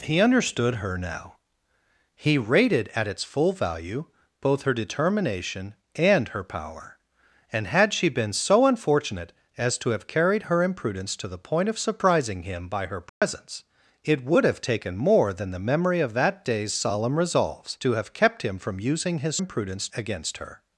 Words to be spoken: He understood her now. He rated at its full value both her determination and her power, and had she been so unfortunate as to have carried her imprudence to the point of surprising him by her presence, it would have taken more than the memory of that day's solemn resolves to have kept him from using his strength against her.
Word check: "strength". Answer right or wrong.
wrong